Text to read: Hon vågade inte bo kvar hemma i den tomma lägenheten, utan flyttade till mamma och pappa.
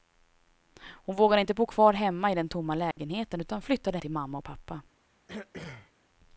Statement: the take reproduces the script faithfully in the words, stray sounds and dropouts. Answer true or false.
false